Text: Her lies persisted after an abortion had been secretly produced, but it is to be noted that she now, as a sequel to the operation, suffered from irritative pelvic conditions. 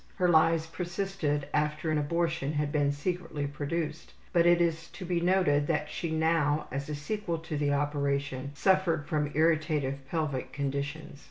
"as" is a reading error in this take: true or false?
false